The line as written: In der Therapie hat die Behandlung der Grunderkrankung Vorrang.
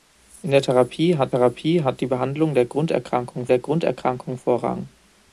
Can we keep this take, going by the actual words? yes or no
no